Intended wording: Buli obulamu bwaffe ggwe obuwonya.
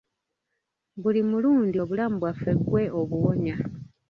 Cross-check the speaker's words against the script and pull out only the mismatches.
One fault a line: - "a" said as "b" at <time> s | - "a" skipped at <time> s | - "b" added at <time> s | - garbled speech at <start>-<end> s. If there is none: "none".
- "mulundi" added at 1.3 s